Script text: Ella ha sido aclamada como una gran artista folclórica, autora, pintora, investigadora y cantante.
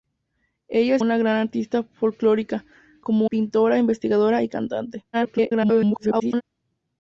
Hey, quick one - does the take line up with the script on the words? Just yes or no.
no